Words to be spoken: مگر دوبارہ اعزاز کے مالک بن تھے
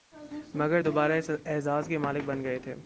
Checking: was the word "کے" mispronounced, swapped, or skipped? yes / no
no